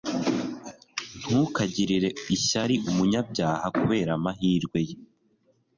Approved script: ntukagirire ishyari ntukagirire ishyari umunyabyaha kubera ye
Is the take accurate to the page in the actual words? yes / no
no